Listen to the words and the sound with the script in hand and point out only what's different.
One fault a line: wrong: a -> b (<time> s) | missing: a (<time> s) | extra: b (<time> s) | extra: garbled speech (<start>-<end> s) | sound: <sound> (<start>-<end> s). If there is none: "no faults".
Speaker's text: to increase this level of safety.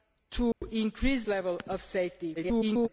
sound: dropout (0.5-0.6 s)
missing: this (1.2 s)
extra: garbled speech (2.4-2.9 s)